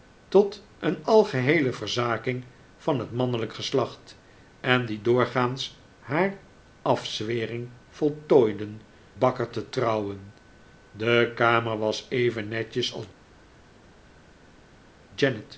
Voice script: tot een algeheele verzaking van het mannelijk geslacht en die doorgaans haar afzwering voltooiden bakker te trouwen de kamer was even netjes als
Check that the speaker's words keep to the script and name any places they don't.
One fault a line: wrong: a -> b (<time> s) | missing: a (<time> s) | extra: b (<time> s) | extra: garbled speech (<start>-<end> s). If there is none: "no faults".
no faults